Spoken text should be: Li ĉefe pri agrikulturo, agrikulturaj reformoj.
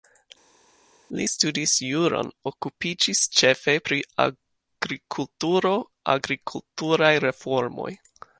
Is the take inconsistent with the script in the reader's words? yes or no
yes